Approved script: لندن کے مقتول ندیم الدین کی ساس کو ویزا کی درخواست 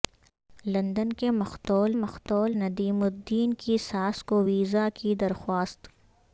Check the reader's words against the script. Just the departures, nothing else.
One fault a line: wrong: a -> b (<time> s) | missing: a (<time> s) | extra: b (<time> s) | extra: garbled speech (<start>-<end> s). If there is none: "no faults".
extra: مقتول (1.9 s)